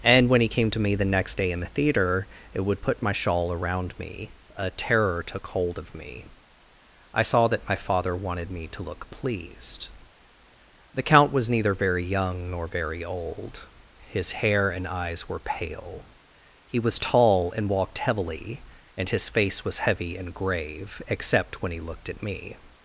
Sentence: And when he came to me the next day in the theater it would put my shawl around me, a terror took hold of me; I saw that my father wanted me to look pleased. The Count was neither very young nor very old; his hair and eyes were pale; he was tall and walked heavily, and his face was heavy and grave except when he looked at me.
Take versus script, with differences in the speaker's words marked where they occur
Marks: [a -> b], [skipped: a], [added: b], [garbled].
And when he came to me the next day in the theater it would put my shawl around me, a terror took hold of me; I saw that my father wanted me to look pleased. The Count was neither very young nor very old; his hair and eyes were pale; he was tall and walked heavily, and his face was heavy and grave except when he looked at me.